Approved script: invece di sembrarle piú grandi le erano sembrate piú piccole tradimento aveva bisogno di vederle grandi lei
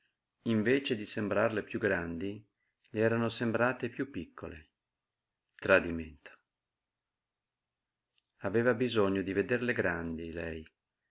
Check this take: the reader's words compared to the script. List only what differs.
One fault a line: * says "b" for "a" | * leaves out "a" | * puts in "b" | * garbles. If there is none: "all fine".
all fine